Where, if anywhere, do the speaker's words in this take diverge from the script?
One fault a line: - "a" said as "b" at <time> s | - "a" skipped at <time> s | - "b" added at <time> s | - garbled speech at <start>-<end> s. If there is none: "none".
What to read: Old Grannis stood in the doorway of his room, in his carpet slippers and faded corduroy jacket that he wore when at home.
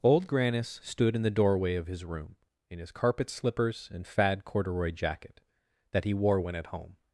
- "faded" said as "fad" at 4.1 s